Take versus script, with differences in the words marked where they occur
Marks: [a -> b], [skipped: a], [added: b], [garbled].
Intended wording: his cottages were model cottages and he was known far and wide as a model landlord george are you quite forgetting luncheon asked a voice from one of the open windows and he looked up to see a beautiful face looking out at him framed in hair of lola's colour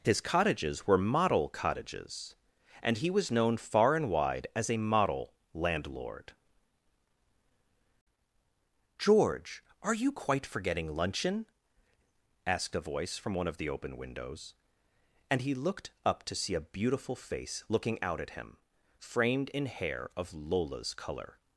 his cottages were model cottages and he was known far and wide as a model landlord george are you quite forgetting luncheon asked a voice from one of the open windows and he looked up to see a beautiful face looking out at him framed in hair of lola's colour